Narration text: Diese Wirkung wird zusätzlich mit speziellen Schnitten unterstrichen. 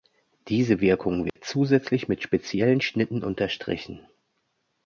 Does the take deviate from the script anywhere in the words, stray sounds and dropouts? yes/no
yes